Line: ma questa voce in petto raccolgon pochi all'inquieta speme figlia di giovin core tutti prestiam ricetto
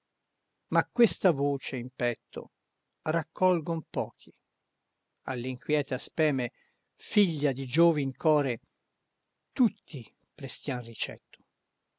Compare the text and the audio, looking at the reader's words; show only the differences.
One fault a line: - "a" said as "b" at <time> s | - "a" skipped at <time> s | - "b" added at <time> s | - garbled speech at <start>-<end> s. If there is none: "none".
none